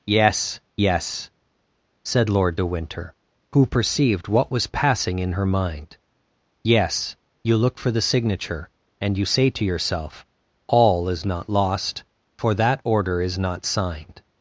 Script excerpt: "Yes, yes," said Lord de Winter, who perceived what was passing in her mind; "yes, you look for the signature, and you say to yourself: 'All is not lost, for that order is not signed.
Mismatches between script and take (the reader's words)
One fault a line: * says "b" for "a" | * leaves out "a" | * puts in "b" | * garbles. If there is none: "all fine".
all fine